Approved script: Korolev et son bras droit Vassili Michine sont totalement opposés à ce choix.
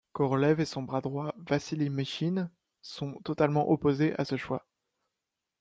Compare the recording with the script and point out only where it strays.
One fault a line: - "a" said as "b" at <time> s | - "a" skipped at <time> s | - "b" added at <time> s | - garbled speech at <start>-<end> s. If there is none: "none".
none